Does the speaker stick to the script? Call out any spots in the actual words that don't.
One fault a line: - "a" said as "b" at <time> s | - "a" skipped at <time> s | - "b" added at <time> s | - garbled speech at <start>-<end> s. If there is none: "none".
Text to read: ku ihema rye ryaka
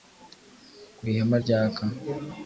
- "rye" skipped at 1.4 s